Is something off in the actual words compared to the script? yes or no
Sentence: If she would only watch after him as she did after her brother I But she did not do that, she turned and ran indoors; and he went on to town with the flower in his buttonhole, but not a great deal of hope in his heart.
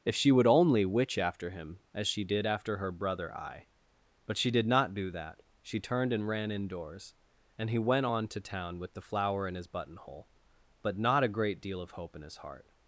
yes